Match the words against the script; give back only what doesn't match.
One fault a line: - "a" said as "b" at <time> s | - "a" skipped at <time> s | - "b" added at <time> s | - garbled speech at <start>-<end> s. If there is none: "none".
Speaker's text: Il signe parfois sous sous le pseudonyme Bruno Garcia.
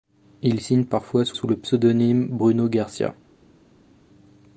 none